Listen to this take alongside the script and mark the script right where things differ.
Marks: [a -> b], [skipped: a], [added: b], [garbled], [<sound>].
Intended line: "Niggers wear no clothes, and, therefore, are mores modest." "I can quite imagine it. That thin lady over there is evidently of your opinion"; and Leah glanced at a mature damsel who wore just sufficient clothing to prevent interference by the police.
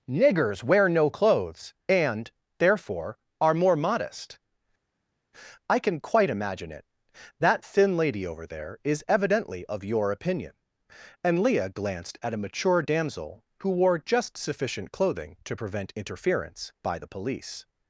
"Niggers wear no clothes, and, therefore, are [mores -> more] modest." "I can quite imagine it. That thin lady over there is evidently of your opinion"; and Leah glanced at a mature damsel who wore just sufficient clothing to prevent interference by the police.